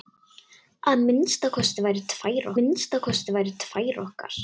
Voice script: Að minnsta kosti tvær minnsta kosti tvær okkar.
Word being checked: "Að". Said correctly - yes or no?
yes